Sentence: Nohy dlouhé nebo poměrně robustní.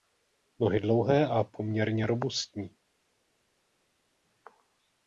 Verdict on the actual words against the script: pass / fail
fail